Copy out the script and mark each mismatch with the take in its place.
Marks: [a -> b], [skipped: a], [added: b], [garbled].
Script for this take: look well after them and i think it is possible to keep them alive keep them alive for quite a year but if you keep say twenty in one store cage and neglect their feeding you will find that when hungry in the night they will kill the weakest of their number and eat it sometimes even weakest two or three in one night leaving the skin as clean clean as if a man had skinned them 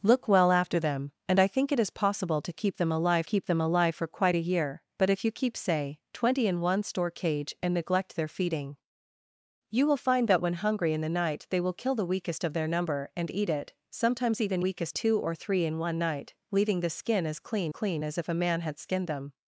look well after them and i think it is possible to keep them alive keep them alive for quite a year but if you keep say twenty in one store cage and neglect their feeding you will find that when hungry in the night they will kill the weakest of their number and eat it sometimes even weakest two or three in one night leaving the skin as clean clean as if a man had skinned them